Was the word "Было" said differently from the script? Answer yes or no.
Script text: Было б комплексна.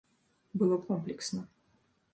no